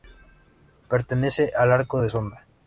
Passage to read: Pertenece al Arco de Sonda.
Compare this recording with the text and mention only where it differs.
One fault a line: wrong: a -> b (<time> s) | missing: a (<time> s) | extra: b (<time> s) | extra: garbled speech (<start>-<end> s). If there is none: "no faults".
no faults